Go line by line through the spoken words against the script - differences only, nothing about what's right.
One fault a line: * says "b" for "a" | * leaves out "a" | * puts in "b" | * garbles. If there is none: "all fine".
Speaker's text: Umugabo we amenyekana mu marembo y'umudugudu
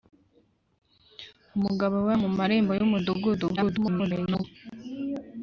* leaves out "amenyekana"
* garbles